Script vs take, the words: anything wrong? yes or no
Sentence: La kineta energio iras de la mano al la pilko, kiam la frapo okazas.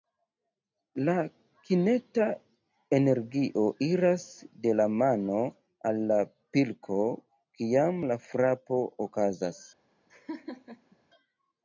no